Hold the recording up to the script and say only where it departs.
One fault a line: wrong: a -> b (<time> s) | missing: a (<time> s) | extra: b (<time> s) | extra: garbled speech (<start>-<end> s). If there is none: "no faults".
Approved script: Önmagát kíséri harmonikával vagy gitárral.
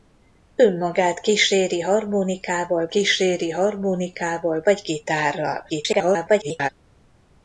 extra: kíséri harmonikával (2.9 s)
extra: garbled speech (5.7-6.7 s)